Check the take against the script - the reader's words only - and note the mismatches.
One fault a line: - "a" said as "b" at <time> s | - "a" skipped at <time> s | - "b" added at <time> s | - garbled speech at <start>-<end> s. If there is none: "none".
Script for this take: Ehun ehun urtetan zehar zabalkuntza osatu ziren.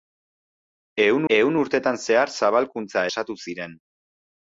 none